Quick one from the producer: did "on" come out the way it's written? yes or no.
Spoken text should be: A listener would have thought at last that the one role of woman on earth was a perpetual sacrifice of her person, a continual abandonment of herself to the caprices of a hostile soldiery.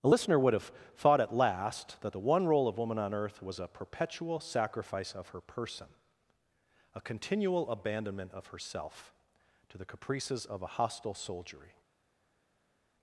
yes